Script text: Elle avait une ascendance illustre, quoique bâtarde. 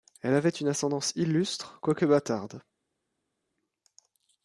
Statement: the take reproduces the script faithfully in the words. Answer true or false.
true